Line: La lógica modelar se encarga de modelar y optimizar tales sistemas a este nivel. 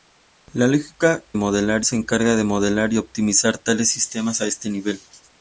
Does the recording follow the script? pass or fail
pass